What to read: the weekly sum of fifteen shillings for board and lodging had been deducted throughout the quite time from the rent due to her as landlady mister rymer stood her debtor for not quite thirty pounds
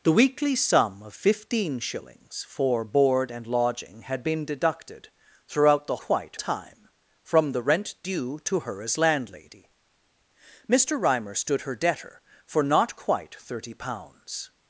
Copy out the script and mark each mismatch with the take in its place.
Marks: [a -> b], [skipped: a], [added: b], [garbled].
the weekly sum of fifteen shillings for board and lodging had been deducted throughout the quite time from the rent due to her as landlady mister rymer stood her debtor for not quite thirty pounds